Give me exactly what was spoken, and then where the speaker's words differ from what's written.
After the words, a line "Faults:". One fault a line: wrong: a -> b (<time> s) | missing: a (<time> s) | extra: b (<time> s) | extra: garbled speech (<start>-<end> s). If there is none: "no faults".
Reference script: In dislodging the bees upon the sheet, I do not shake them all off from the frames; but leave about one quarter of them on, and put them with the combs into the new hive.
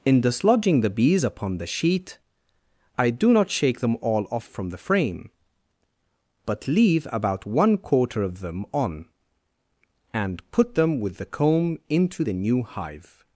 In dislodging the bees upon the sheet, I do not shake them all off from the frame; but leave about one quarter of them on, and put them with the comb into the new hive.
Faults:
wrong: frames -> frame (4.8 s)
wrong: combs -> comb (11.2 s)